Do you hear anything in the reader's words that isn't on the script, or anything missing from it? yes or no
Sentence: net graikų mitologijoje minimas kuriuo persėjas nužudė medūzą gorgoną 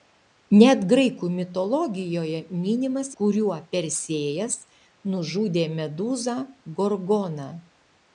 no